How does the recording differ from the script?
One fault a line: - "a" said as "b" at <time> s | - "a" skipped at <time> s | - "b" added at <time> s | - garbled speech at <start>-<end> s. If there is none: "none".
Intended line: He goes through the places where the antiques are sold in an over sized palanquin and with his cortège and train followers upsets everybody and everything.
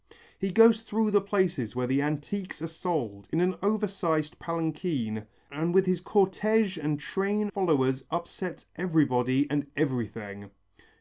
none